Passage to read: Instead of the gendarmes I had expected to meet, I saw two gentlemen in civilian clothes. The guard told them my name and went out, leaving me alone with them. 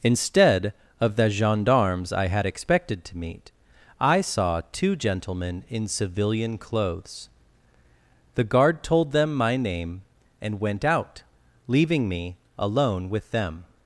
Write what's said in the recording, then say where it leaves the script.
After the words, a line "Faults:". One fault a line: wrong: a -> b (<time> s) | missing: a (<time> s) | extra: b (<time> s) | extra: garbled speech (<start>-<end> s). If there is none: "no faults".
Instead of the gendarmes I had expected to meet, I saw two gentlemen in civilian clothes. The guard told them my name and went out, leaving me alone with them.
Faults:
no faults